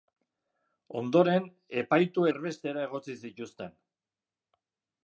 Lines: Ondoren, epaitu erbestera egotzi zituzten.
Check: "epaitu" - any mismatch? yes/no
no